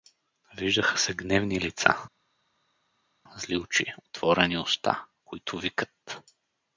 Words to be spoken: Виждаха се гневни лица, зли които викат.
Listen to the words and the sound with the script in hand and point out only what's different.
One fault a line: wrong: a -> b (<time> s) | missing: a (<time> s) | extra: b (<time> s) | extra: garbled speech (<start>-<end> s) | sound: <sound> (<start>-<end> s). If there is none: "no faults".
extra: очи отворени уста (3.6 s)